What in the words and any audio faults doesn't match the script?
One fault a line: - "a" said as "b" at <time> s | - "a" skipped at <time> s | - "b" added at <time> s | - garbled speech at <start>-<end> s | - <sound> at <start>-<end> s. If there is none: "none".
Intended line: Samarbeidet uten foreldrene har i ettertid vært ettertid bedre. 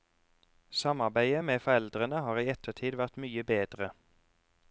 - "uten" said as "med" at 1.4 s
- "ettertid" said as "mye" at 3.2 s